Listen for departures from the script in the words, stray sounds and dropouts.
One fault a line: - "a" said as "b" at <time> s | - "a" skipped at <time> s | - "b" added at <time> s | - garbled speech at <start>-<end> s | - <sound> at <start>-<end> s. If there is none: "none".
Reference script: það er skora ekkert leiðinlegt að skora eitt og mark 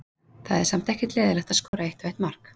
- "skora" said as "samt" at 0.7 s
- dropout at 1.7-1.7 s
- "eitt" added at 2.1 s